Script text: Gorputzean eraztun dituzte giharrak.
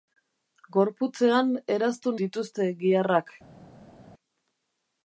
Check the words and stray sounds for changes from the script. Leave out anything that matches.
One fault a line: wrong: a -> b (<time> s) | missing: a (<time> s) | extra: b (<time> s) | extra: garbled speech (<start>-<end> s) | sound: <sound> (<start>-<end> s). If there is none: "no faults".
no faults